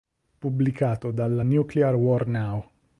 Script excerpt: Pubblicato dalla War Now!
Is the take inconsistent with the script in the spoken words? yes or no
yes